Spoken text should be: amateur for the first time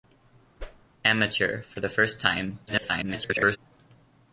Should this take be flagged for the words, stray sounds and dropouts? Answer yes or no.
yes